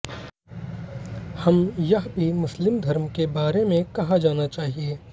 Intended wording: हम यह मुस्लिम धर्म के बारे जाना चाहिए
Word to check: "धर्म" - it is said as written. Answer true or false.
true